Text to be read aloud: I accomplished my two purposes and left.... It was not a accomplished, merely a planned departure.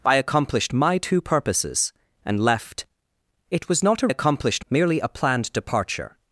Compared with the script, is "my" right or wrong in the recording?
right